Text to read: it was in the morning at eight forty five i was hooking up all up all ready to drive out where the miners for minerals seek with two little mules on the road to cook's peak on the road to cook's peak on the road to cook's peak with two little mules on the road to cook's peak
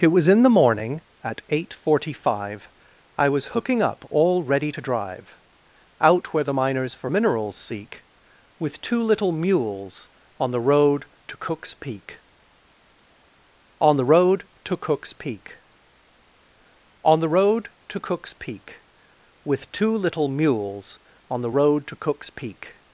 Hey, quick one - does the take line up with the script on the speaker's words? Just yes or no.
no